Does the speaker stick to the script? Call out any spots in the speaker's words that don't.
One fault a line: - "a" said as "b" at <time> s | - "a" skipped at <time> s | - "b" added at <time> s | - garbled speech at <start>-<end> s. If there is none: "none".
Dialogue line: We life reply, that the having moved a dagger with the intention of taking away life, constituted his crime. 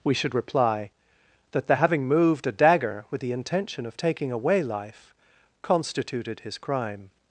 - "life" said as "should" at 0.1 s